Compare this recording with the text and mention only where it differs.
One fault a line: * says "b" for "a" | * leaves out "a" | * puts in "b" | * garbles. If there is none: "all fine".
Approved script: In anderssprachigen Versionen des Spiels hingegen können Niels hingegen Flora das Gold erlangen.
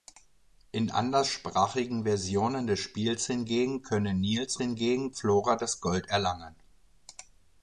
all fine